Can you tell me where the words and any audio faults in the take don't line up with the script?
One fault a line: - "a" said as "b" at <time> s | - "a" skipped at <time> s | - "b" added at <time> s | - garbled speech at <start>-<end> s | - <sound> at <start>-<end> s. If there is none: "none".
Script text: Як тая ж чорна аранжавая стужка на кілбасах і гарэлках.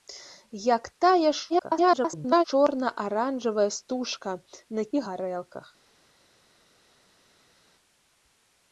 - garbled speech at 1.5-2.4 s
- "кілбасах" skipped at 4.8 s